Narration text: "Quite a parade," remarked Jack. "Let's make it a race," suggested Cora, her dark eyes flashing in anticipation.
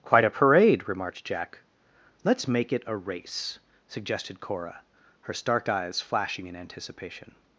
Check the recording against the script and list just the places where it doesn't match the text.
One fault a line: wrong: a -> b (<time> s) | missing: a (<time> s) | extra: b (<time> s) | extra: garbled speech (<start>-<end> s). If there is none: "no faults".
wrong: dark -> stark (5.3 s)